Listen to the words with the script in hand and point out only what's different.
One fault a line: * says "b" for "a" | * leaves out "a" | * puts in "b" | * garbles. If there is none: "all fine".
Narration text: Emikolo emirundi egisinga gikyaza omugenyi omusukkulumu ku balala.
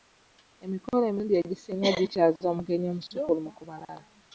all fine